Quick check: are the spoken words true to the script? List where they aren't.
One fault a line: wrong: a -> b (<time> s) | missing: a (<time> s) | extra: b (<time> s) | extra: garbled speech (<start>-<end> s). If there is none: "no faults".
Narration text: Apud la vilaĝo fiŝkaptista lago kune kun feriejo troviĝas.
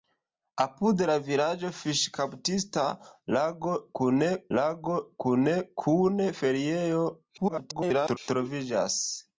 extra: lago kune (4.6 s)
extra: garbled speech (7.4-8.2 s)